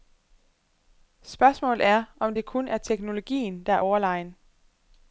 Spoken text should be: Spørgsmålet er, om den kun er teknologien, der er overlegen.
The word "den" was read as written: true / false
false